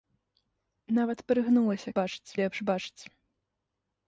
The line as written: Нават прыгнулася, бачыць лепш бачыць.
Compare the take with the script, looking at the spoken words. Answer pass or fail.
pass